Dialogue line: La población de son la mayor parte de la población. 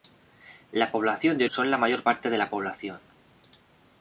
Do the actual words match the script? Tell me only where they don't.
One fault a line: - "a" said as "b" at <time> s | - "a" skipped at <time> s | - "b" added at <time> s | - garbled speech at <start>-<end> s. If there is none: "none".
none